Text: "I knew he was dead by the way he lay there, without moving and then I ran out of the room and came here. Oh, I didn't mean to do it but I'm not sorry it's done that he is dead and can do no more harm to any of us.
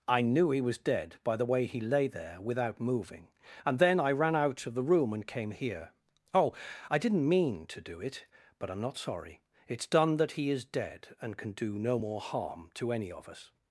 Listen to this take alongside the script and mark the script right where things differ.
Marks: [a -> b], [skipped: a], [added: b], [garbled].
"I knew he was dead by the way he lay there, without moving and then I ran out of the room and came here. Oh, I didn't mean to do it but I'm not sorry it's done that he is dead and can do no more harm to any of us.